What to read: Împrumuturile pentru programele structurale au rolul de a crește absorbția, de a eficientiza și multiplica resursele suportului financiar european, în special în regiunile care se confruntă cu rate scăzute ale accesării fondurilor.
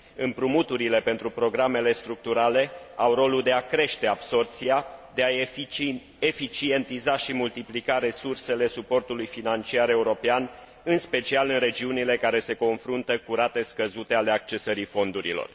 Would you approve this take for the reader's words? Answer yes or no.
yes